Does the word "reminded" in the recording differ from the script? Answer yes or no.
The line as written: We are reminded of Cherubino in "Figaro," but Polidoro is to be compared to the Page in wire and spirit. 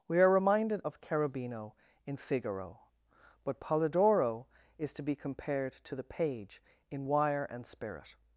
no